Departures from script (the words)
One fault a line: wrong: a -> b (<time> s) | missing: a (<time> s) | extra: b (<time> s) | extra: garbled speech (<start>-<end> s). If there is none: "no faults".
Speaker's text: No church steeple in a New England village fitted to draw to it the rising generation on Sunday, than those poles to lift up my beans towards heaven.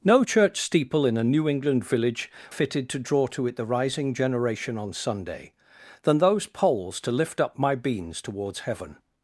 no faults